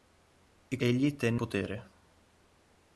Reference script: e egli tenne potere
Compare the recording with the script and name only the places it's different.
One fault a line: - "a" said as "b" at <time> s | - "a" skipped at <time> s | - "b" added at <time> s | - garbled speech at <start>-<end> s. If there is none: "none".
none